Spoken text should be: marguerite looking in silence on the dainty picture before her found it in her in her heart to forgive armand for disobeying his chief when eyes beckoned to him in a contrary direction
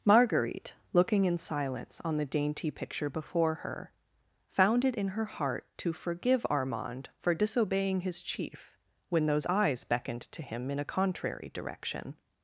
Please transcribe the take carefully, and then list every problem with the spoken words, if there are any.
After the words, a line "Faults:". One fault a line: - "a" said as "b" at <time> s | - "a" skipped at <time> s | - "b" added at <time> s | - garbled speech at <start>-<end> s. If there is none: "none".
marguerite looking in silence on the dainty picture before her found it in her heart to forgive armand for disobeying his chief when those eyes beckoned to him in a contrary direction
Faults:
- "in her" skipped at 5.2 s
- "those" added at 9.3 s